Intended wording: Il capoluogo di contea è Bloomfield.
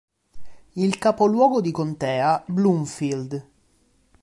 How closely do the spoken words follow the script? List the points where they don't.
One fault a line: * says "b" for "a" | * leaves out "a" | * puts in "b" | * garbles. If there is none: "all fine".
* leaves out "è"